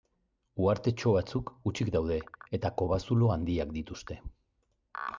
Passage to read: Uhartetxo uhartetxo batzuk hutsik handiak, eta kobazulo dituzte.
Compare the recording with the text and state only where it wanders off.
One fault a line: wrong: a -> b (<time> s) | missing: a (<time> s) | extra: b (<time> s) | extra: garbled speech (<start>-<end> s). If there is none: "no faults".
missing: uhartetxo (1.1 s)
wrong: handiak -> daude (2.0 s)
extra: handiak (3.4 s)